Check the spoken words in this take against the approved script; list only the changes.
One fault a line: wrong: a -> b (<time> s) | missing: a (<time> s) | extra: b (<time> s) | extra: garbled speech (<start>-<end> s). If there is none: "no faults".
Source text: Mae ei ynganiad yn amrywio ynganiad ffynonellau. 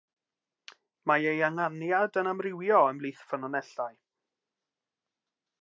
wrong: ynganiad -> ymhlith (3.0 s)